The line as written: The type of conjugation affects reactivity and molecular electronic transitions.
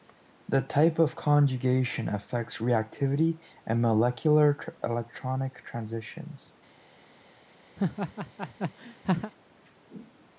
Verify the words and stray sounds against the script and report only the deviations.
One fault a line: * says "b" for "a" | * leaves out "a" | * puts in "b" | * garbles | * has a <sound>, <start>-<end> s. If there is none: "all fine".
* has a laugh, 7.8-9.3 s